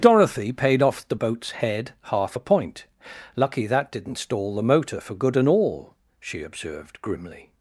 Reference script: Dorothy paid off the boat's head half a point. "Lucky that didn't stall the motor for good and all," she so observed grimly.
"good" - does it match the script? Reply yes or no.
yes